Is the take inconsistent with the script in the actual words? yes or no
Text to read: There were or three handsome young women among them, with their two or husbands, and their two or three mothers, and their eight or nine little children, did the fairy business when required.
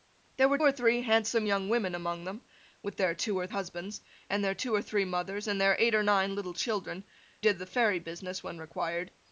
no